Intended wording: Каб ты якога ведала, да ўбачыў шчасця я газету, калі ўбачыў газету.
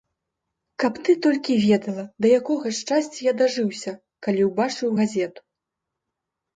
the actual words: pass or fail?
fail